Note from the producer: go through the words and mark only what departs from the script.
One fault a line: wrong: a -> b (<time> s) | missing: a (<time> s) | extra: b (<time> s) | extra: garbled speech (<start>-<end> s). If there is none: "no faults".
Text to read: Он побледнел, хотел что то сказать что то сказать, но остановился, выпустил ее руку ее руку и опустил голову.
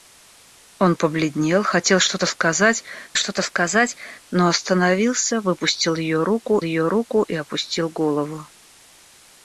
no faults